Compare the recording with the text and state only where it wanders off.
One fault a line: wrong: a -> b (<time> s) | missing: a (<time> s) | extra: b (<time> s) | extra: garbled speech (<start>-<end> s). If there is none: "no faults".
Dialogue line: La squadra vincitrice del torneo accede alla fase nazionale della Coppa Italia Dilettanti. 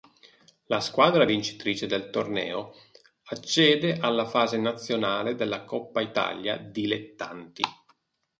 no faults